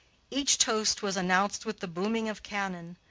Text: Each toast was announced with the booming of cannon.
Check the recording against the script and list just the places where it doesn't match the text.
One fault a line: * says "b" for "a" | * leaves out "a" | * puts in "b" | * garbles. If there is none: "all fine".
all fine